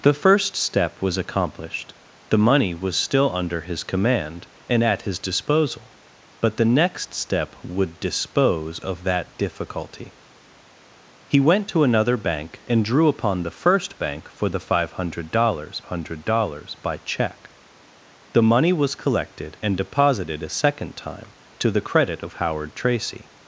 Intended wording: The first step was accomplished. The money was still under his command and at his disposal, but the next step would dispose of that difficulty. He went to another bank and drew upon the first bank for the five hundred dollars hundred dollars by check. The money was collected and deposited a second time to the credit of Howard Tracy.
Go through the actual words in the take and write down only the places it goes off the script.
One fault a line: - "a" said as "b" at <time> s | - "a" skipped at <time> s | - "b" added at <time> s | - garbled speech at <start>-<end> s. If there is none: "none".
none